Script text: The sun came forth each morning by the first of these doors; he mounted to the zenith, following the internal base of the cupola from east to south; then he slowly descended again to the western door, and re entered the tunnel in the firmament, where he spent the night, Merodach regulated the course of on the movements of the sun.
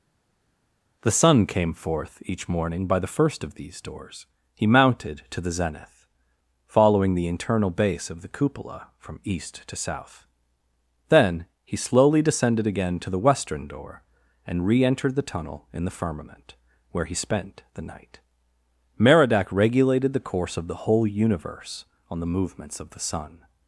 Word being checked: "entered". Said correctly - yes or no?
yes